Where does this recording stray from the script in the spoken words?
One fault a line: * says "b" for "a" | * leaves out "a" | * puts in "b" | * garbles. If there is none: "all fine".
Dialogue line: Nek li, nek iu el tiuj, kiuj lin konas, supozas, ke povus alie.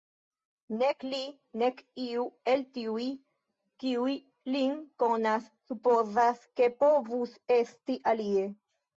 * puts in "esti"